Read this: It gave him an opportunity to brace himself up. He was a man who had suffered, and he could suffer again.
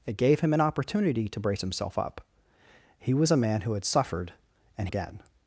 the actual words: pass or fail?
fail